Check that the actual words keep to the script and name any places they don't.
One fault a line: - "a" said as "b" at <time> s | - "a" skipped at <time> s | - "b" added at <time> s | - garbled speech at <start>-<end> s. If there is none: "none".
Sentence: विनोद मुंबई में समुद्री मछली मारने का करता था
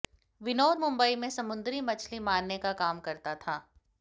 - "काम" added at 2.7 s